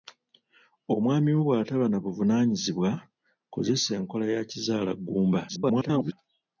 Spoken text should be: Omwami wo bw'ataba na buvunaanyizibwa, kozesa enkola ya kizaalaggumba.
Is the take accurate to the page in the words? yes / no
no